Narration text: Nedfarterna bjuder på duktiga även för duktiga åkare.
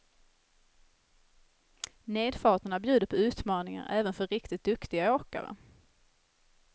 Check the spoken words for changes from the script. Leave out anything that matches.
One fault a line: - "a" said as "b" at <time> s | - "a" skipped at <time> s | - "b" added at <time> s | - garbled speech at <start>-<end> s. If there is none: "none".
- "duktiga" said as "utmaningar" at 3.1 s
- "riktigt" added at 4.3 s